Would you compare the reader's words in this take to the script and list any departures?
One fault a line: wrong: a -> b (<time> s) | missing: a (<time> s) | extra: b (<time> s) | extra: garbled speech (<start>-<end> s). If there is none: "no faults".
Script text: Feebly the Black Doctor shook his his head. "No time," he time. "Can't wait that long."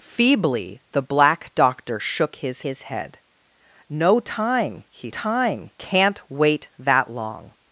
no faults